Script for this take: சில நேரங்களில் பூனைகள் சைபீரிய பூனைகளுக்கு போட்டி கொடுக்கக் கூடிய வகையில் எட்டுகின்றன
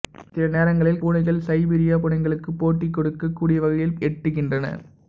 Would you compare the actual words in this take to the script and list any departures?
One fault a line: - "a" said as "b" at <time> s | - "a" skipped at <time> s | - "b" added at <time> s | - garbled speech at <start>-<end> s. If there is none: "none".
none